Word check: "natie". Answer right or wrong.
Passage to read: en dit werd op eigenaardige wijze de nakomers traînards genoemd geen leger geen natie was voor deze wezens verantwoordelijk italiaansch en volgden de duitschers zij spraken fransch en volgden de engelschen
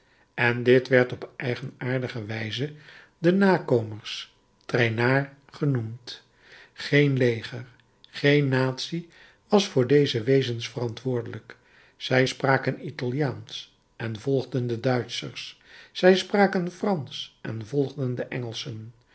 right